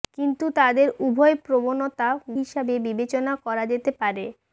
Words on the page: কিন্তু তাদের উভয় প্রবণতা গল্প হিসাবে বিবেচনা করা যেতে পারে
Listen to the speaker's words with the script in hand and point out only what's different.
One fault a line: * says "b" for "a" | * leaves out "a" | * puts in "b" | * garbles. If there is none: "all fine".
* leaves out "গল্প"